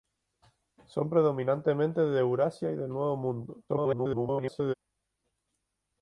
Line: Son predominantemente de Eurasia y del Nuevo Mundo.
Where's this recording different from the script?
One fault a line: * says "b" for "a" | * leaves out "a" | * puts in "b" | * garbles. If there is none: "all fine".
* garbles